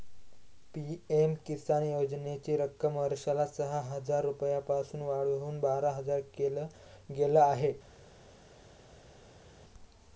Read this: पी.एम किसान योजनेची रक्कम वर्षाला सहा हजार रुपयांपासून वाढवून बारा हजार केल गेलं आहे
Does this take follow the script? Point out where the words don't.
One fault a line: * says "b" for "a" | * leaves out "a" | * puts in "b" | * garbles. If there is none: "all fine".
all fine